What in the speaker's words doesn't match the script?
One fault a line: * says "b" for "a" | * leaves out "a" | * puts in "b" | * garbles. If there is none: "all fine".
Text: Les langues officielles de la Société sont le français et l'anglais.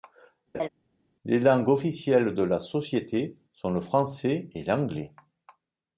all fine